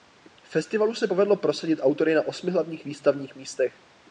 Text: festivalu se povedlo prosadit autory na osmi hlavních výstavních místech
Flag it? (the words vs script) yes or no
no